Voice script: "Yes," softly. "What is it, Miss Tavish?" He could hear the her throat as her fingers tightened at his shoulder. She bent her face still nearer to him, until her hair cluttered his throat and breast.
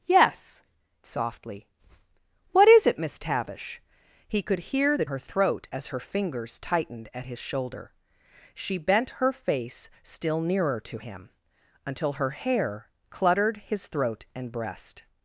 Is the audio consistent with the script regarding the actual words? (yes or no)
yes